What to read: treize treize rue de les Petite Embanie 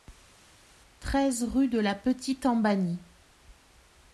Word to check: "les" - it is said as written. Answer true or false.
false